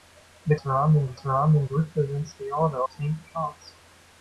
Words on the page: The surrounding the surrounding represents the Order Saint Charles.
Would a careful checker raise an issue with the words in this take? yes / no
no